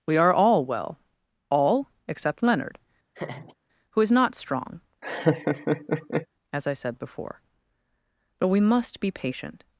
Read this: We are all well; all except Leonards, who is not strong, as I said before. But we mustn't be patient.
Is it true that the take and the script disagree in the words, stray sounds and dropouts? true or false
true